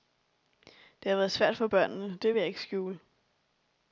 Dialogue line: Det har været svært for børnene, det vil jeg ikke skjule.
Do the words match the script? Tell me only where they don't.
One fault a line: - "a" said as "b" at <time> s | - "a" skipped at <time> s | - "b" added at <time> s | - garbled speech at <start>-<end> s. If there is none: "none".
none